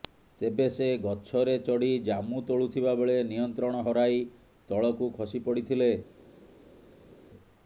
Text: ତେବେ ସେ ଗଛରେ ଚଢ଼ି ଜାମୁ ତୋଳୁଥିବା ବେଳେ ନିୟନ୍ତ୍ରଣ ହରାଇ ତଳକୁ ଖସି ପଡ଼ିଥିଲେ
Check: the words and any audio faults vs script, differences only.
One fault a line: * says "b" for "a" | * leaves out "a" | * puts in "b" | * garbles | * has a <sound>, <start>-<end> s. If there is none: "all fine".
all fine